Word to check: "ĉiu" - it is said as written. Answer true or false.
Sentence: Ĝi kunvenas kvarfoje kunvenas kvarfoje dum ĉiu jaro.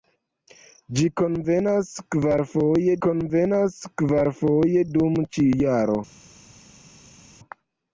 true